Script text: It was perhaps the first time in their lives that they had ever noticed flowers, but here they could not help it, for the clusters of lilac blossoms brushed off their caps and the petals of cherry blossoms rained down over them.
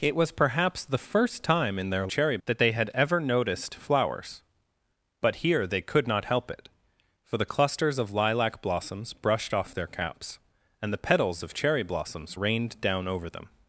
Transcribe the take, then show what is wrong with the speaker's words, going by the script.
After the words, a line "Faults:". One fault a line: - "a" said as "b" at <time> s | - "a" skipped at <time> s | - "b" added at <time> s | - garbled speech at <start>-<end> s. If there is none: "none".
It was perhaps the first time in their cherry that they had ever noticed flowers, but here they could not help it, for the clusters of lilac blossoms brushed off their caps and the petals of cherry blossoms rained down over them.
Faults:
- "lives" said as "cherry" at 2.1 s